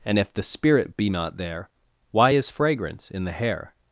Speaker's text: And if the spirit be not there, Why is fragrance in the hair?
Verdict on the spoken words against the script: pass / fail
pass